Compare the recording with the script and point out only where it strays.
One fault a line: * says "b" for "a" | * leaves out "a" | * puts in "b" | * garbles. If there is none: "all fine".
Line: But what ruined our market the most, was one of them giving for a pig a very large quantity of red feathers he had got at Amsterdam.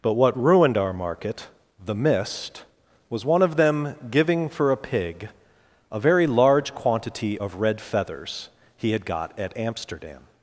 * says "mist" for "most"